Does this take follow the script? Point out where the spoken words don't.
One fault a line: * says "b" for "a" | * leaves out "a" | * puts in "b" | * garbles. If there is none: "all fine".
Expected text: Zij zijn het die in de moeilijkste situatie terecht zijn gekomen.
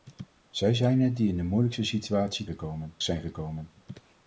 * says "gekomen" for "terecht"